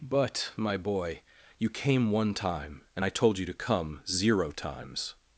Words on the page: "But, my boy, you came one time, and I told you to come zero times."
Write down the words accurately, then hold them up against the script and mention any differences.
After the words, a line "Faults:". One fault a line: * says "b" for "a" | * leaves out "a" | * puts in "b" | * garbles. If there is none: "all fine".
"But, my boy, you came one time, and I told you to come zero times."
Faults:
all fine